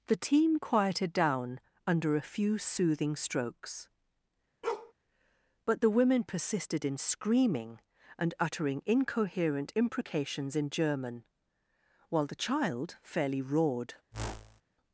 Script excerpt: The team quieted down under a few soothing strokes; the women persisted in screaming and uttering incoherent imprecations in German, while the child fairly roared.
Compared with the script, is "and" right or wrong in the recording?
right